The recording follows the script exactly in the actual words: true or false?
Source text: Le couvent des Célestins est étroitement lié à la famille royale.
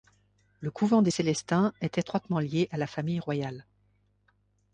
true